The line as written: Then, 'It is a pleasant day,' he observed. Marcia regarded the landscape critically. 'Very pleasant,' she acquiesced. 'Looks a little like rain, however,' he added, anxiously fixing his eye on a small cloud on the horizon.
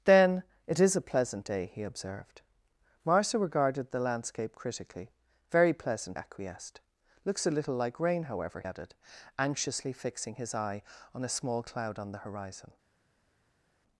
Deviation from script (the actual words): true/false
true